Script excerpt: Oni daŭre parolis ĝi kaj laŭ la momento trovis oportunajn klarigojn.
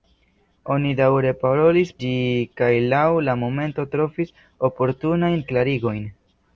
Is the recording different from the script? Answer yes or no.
no